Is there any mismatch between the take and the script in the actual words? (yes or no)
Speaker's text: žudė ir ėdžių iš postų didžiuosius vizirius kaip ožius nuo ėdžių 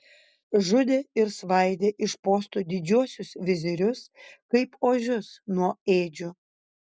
yes